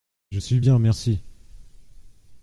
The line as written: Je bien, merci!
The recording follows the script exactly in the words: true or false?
false